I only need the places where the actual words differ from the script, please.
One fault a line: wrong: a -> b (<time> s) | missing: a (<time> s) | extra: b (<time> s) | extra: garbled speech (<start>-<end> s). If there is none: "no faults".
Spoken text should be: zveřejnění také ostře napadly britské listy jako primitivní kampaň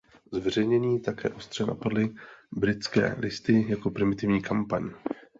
no faults